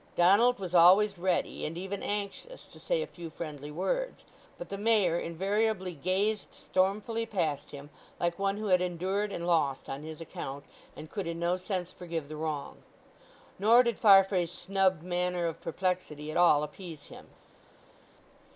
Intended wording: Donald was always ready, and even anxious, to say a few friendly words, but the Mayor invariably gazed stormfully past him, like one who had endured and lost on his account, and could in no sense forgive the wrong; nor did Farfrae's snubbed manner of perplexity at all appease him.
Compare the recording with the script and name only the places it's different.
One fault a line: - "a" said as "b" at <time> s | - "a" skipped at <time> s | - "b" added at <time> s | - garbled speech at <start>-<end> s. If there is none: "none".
none